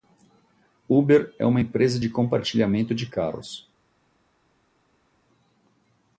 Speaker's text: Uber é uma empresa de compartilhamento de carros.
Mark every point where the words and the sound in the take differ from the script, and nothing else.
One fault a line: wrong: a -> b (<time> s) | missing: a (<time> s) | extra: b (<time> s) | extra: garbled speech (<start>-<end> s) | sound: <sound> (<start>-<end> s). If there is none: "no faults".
no faults